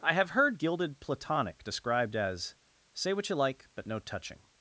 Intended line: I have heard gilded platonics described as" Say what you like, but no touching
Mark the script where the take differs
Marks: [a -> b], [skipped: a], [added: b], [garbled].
I have heard gilded [platonics -> platonic] described as" Say what you like, but no touching